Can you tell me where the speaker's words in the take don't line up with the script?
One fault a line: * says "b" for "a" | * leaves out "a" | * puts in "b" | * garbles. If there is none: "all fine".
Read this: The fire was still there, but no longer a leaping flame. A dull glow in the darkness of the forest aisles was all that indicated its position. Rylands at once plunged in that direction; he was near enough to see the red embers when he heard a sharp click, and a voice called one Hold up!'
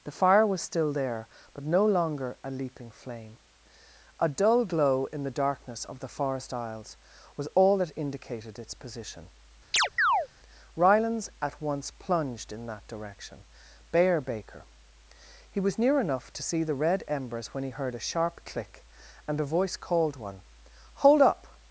* puts in "bear baker"